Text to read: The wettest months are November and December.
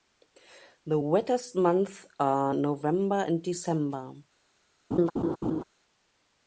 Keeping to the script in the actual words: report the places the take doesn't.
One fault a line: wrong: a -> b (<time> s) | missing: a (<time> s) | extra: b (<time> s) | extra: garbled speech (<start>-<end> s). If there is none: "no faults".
no faults